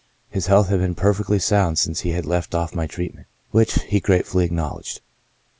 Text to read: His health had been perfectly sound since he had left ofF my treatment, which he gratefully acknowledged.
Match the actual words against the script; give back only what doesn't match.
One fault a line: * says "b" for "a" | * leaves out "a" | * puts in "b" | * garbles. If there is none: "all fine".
all fine